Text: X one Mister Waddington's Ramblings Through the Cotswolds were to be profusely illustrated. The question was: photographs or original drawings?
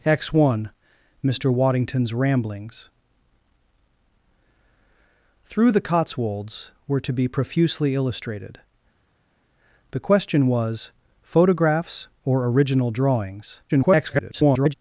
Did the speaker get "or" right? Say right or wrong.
right